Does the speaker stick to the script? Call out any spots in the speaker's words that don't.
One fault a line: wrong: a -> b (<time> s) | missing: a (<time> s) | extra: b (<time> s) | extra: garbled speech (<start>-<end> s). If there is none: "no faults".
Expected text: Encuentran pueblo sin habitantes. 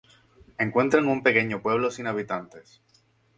extra: un pequeño (1.1 s)